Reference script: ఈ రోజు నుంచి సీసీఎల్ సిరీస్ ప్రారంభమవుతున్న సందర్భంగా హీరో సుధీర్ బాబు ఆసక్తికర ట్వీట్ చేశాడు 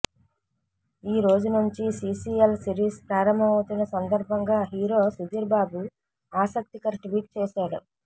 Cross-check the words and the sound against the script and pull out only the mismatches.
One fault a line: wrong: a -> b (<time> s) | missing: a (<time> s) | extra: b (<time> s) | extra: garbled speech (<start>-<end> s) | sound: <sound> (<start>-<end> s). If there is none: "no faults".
no faults